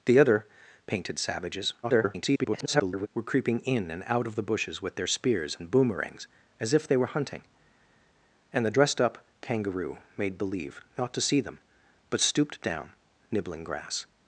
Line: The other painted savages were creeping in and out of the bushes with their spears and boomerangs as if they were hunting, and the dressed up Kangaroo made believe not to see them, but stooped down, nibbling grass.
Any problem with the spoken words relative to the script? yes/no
yes